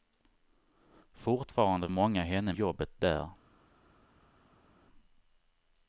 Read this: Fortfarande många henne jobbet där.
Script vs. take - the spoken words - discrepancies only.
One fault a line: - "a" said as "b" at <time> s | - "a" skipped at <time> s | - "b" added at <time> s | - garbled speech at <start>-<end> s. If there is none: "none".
none